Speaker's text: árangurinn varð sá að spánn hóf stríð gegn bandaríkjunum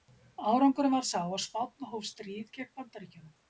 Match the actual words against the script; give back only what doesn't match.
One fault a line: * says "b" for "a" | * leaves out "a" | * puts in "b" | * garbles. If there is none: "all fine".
all fine